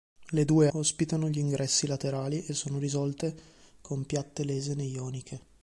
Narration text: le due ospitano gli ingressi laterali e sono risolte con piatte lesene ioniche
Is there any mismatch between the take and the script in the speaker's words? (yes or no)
no